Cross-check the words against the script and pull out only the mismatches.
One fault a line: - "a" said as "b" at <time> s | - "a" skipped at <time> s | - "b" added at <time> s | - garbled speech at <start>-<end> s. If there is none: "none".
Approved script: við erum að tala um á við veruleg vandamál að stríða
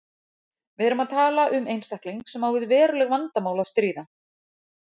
- "einstakling sem" added at 1.8 s